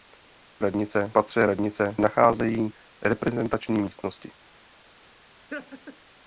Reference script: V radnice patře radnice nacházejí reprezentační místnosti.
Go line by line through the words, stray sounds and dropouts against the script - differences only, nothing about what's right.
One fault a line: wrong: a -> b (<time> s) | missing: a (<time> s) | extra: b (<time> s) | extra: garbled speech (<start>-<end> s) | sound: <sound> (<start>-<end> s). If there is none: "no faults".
sound: laugh (5.5-6.0 s)